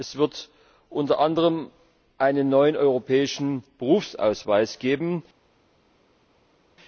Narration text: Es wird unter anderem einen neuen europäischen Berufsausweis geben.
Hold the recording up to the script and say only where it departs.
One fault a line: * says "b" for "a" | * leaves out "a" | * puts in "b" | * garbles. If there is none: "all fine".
all fine